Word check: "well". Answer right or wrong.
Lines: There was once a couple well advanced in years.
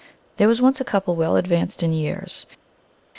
right